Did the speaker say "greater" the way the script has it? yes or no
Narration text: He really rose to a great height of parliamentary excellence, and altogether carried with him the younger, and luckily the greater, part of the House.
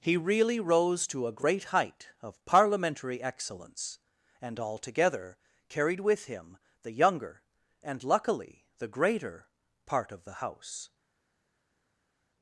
yes